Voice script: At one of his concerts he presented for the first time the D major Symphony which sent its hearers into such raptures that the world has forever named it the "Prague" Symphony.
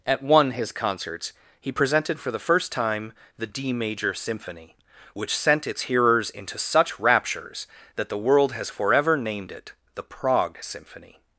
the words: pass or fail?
fail